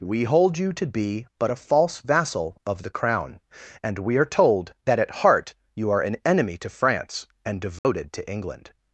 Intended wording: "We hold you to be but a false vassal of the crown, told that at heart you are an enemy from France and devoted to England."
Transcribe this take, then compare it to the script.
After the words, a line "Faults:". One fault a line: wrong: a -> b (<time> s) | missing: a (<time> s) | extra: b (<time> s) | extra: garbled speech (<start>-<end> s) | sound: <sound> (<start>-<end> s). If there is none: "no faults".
"We hold you to be but a false vassal of the crown, and we are told that at heart you are an enemy to France and devoted to England."
Faults:
extra: and we are (3.8 s)
wrong: from -> to (6.6 s)
sound: dropout (7.8-7.8 s)